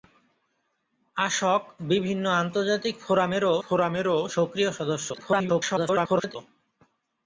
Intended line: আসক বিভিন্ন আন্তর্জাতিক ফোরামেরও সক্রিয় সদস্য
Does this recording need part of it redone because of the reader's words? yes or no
yes